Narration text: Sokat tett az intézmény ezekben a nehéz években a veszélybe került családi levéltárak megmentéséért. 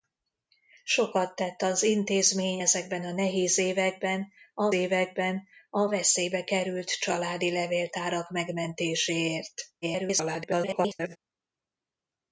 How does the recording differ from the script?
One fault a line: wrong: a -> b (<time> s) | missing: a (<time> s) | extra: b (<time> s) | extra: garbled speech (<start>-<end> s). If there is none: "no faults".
extra: években a (4.7 s)
extra: garbled speech (9.8-11.2 s)